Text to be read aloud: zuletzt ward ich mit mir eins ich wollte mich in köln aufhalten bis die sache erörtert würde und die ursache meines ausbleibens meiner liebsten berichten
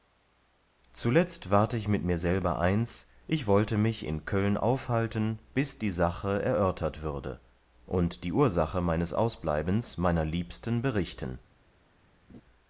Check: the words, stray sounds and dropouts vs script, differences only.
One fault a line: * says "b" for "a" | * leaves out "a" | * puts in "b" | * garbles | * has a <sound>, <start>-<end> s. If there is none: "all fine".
* puts in "selber"
* has a laugh, 12.3-12.4 s